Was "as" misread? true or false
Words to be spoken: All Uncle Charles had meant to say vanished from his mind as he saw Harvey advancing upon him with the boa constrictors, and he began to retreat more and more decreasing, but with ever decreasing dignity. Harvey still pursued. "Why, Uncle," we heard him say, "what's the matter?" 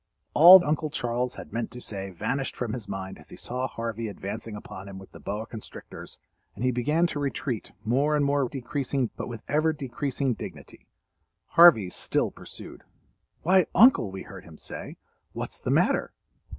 false